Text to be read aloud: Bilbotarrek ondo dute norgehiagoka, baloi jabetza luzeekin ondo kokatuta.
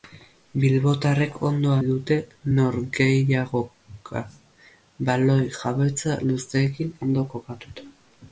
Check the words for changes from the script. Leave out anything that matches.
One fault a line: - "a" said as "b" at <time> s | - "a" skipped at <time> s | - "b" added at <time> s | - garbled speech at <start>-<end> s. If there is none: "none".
none